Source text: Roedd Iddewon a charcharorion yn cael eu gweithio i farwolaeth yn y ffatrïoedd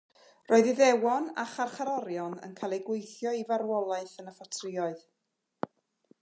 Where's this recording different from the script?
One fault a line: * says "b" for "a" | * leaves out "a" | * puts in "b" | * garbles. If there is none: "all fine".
all fine